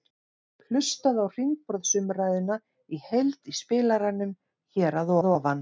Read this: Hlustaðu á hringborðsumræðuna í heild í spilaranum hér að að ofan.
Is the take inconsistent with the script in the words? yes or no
no